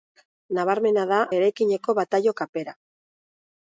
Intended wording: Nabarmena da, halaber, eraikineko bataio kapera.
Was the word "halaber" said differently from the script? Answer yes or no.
yes